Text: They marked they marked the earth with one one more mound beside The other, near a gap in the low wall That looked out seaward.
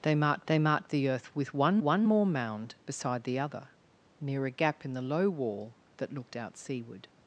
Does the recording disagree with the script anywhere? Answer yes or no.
no